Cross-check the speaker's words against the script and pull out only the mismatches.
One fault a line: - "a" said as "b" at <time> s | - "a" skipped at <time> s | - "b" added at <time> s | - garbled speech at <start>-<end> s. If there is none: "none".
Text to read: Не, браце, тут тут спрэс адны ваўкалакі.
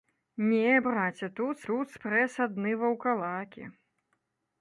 none